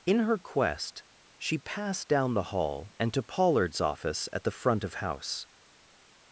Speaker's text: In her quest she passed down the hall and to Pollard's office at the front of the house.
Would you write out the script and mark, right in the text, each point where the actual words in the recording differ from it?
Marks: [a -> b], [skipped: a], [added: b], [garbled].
In her quest she passed down the hall and to Pollard's office at the front of [skipped: the] house.